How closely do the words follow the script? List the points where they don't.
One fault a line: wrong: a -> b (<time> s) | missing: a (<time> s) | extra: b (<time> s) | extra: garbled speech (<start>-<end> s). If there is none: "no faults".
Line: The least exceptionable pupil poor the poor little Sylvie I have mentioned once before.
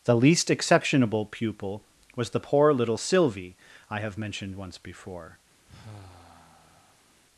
wrong: poor -> was (2.1 s)